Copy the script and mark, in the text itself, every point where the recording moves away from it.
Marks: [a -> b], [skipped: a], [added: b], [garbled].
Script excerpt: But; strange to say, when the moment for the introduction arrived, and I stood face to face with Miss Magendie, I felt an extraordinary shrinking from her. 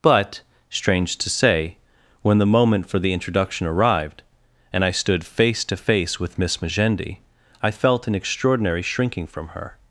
But; strange to say, when the moment for the introduction arrived, and I stood face to face with Miss Magendie, I felt an extraordinary shrinking from her.